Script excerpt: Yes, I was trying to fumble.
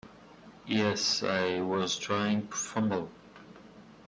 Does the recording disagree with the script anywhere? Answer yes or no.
yes